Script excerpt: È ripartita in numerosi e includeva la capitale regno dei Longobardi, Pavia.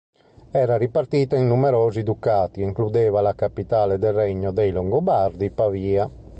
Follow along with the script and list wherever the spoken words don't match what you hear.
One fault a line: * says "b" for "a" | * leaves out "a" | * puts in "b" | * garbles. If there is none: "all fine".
* says "Era" for "È"
* puts in "ducati"
* puts in "del"